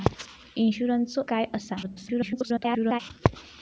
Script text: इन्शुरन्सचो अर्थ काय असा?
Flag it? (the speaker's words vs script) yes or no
yes